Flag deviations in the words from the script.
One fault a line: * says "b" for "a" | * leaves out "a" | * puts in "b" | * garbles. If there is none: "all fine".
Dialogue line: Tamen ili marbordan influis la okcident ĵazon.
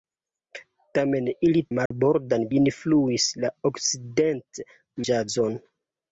all fine